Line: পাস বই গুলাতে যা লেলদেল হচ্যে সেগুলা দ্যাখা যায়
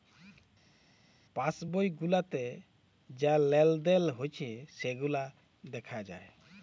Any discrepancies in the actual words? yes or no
no